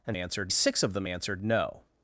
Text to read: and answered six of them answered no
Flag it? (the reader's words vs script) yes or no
no